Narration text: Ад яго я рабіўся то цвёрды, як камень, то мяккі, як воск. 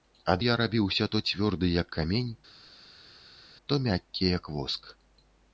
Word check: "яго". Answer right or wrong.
wrong